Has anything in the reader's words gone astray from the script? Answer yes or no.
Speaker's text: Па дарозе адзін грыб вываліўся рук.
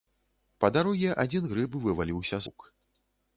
no